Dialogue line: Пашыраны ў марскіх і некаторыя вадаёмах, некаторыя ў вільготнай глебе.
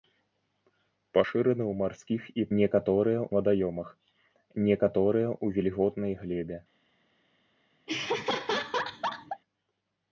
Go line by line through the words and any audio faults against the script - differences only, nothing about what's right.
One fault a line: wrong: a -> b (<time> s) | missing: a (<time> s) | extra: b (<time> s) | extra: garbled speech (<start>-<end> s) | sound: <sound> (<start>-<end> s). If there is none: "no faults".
sound: laugh (7.9-9.4 s)